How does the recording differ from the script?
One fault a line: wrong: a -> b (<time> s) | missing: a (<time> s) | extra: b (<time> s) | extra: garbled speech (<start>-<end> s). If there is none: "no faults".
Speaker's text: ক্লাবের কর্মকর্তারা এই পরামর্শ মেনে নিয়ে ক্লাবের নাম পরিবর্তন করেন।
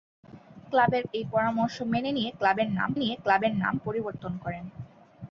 missing: কর্মকর্তারা (1.0 s)
extra: নিয়ে ক্লাবের নাম (3.0 s)